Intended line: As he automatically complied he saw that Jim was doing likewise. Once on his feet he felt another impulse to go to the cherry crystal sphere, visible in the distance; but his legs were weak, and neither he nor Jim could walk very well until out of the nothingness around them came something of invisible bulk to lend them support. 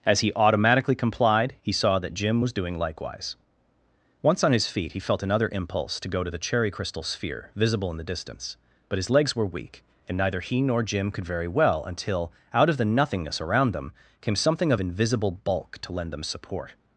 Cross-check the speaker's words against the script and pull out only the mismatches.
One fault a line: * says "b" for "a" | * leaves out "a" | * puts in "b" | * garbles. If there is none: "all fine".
* leaves out "walk"